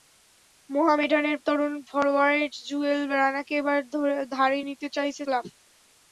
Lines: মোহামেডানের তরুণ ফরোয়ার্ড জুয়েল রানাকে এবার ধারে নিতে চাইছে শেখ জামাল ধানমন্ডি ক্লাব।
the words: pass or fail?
fail